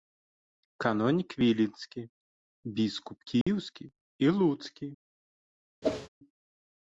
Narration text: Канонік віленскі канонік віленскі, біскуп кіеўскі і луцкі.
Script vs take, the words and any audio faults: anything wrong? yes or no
yes